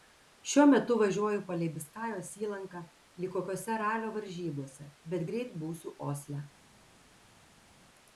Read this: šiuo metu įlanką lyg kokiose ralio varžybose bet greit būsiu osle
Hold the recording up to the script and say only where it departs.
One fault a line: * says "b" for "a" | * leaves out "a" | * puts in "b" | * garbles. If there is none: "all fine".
* puts in "važiuoju palei biskajos"